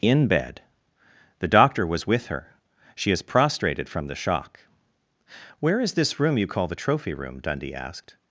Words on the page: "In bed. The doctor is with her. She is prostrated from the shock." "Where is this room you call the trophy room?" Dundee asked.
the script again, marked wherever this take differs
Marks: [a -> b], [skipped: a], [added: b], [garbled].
"In bed. The doctor [is -> was] with her. She is prostrated from the shock." "Where is this room you call the trophy room?" Dundee asked.